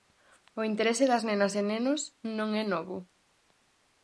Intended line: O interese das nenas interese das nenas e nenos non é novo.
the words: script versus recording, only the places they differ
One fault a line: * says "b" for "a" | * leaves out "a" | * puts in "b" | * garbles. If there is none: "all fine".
* leaves out "interese das nenas"